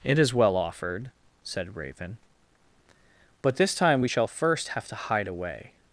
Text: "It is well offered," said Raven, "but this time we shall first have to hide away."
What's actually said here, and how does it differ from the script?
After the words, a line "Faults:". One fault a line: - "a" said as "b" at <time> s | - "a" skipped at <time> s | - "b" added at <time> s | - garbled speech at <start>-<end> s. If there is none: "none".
"It is well offered," said Raven, "but this time we shall first have to hide away."
Faults:
none